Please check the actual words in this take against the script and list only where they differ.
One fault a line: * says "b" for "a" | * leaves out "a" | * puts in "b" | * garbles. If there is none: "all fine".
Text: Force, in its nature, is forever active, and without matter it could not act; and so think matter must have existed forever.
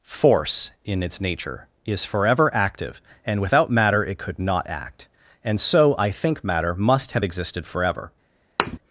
* puts in "I"